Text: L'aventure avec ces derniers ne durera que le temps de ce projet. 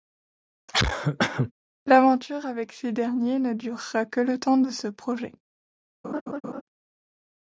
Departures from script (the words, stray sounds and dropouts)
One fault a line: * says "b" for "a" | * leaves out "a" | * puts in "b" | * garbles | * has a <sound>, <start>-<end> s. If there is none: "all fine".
* has a cough, 0.7-1.5 s
* has a laugh, 6.0-6.6 s